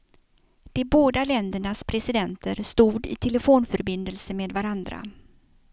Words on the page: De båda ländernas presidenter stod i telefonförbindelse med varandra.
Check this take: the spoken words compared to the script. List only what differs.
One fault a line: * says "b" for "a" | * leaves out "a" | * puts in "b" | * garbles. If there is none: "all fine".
all fine